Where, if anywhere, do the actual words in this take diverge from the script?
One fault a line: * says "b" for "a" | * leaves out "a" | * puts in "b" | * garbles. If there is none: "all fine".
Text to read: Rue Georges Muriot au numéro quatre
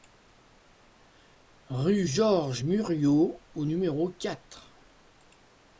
all fine